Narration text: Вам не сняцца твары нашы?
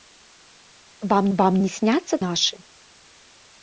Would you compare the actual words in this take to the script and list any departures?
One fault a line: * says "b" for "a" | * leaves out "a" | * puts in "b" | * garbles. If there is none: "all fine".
* puts in "вам"
* leaves out "твары"